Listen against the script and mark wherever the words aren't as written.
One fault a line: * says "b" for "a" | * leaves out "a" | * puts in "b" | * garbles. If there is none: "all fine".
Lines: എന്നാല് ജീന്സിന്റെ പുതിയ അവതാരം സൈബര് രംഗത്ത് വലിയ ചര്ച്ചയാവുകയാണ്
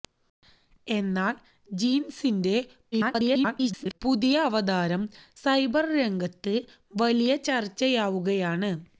* garbles